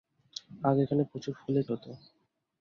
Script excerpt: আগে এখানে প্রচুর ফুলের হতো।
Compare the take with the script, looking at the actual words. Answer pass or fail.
pass